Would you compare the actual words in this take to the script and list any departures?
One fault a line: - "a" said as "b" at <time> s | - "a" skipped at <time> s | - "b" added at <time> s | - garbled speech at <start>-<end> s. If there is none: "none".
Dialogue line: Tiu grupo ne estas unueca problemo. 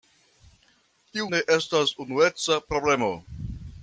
- "grupo" skipped at 1.3 s